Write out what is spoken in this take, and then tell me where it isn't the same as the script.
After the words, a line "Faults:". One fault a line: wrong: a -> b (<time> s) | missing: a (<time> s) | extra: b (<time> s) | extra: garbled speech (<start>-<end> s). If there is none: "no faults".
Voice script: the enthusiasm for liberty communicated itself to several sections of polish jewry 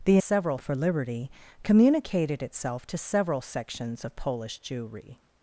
the several for liberty communicated itself to several sections of polish jewry
Faults:
wrong: enthusiasm -> several (0.2 s)